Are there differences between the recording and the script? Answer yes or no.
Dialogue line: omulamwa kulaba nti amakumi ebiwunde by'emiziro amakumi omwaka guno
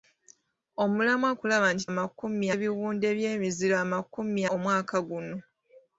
no